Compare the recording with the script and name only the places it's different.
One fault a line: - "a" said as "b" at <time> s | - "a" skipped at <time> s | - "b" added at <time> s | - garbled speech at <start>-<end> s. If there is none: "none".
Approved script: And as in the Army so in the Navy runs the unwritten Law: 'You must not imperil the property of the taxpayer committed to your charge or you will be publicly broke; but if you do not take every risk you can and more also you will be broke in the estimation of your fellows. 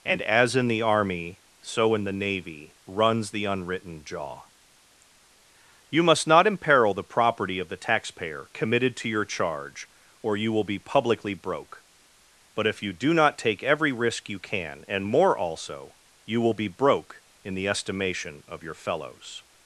- "Law" said as "Jaw" at 4.0 s